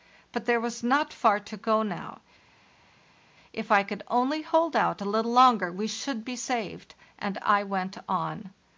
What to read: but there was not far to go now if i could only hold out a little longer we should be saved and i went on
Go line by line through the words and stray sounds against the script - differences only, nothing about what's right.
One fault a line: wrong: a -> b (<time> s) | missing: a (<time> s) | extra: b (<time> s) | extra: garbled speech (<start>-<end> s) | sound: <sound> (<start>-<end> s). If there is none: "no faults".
no faults